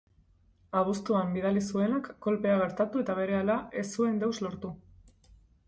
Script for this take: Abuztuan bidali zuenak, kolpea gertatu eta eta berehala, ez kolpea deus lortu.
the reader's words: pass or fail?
fail